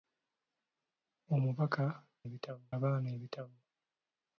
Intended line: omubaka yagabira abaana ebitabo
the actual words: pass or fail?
fail